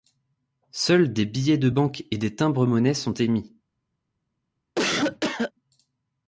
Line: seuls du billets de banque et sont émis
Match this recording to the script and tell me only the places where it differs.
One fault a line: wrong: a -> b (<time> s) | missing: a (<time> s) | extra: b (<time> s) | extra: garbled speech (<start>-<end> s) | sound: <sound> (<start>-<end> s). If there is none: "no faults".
wrong: du -> des (1.1 s)
extra: des timbres monnaie (2.2 s)
sound: cough (4.8-5.5 s)